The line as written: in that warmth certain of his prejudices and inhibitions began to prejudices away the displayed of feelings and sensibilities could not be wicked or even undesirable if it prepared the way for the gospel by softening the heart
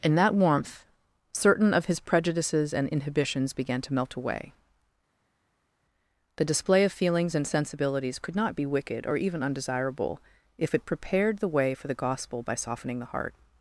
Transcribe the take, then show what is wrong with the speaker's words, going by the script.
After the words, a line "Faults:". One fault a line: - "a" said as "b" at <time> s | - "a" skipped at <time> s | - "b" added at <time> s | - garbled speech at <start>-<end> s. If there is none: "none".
in that warmth certain of his prejudices and inhibitions began to melt away the display of feelings and sensibilities could not be wicked or even undesirable if it prepared the way for the gospel by softening the heart
Faults:
- "prejudices" said as "melt" at 3.9 s
- "displayed" said as "display" at 6.4 s